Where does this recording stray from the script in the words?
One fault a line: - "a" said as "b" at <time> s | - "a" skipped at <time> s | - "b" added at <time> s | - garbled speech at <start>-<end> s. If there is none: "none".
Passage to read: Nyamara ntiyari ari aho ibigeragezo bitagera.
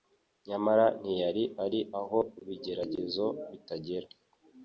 none